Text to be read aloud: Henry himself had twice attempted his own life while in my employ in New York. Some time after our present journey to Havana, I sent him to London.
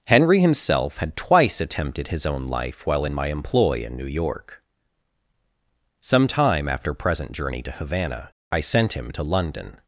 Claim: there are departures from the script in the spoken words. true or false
true